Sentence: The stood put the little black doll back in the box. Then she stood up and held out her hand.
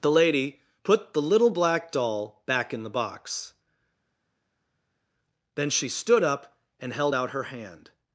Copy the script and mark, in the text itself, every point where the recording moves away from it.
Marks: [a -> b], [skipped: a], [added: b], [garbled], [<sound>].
The [stood -> lady] put the little black doll back in the box. Then she stood up and held out her hand.